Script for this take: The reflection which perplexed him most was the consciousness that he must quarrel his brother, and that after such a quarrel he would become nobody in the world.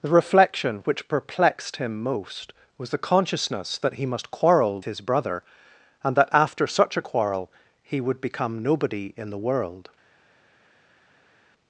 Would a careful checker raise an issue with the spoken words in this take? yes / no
no